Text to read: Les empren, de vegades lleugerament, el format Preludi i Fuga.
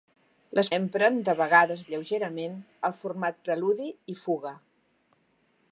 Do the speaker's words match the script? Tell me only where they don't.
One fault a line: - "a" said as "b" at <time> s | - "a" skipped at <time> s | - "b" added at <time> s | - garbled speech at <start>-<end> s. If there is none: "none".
none